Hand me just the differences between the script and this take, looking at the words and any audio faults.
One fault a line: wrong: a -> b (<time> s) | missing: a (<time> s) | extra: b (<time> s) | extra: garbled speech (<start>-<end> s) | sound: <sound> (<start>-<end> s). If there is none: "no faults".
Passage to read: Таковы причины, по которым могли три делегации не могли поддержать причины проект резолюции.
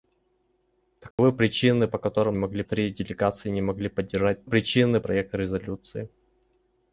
sound: dropout (1.1-1.2 s)